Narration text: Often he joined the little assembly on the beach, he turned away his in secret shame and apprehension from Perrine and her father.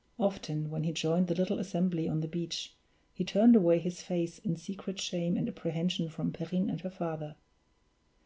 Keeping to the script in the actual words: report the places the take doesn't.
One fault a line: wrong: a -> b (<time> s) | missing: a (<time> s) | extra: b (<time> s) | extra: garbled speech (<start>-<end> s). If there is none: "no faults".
extra: when (0.7 s)
extra: face (4.0 s)